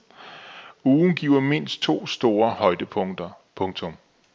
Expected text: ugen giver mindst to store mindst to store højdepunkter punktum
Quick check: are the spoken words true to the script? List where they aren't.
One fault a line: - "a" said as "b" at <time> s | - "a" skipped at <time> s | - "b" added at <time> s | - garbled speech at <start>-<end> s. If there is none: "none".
- "mindst to store" skipped at 2.5 s